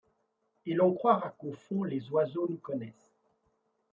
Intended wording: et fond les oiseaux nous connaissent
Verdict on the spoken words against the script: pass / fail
fail